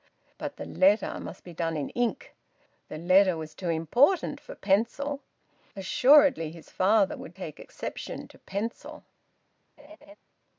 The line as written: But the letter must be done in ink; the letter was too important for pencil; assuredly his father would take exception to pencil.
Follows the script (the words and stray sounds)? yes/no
no